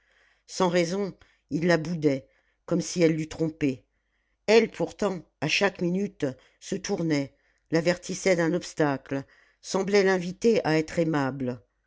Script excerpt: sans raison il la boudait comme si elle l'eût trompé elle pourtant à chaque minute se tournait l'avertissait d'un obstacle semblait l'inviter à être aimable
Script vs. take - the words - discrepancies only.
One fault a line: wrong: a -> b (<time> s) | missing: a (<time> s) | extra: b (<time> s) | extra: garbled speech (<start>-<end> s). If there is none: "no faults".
no faults